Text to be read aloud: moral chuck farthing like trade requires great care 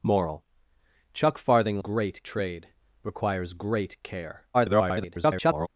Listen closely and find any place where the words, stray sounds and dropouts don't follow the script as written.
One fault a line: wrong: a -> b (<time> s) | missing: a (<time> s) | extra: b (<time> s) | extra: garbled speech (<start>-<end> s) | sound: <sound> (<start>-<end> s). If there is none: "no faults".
wrong: like -> great (1.8 s)
extra: garbled speech (4.5-5.7 s)